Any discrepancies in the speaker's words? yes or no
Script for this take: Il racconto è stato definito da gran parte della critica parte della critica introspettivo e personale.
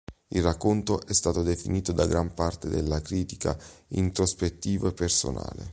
yes